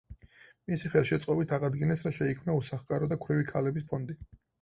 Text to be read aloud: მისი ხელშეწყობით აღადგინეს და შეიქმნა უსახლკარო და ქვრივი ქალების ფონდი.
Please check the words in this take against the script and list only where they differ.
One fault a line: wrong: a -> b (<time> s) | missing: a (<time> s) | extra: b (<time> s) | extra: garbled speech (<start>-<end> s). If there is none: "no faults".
no faults